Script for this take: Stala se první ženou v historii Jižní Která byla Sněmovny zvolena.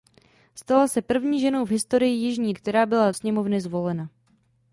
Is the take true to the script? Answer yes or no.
yes